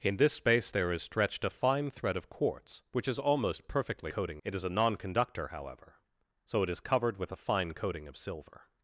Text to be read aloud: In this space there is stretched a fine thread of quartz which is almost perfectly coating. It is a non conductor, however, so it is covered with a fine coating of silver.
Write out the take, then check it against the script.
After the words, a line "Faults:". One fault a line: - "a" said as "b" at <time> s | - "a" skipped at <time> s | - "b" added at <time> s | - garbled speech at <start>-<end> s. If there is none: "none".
In this space there is stretched a fine thread of quartz which is almost perfectly coating. It is a non conductor, however, so it is covered with a fine coating of silver.
Faults:
none